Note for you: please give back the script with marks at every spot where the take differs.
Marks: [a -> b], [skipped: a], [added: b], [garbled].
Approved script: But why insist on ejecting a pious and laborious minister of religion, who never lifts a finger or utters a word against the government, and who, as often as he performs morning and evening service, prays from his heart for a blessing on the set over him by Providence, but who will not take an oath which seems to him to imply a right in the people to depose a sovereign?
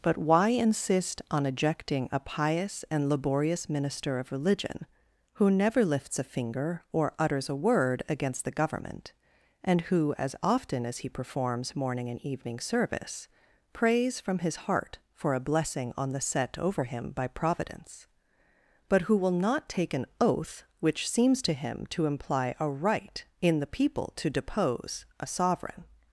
But why insist on ejecting a pious and laborious minister of religion, who never lifts a finger or utters a word against the government, and who, as often as he performs morning and evening service, prays from his heart for a blessing on the set over him by Providence, but who will not take an oath which seems to him to imply a right in the people to depose a sovereign?